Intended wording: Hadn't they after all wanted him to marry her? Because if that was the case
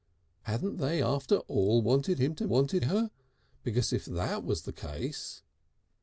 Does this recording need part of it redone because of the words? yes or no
yes